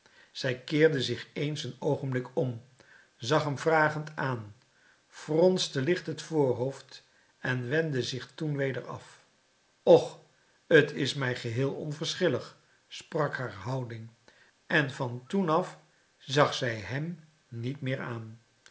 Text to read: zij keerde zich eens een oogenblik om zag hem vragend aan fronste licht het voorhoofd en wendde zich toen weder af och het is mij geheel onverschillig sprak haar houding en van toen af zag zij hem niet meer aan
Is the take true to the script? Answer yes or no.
yes